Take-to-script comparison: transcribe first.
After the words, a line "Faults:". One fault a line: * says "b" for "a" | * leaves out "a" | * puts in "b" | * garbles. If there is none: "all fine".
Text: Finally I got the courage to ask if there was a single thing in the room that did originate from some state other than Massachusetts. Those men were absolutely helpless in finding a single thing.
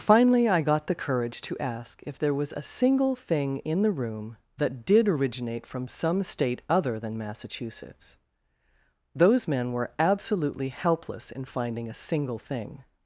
Finally I got the courage to ask if there was a single thing in the room that did originate from some state other than Massachusetts. Those men were absolutely helpless in finding a single thing.
Faults:
all fine